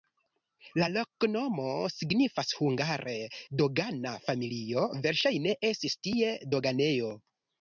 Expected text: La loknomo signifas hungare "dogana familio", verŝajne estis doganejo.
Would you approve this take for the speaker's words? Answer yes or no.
no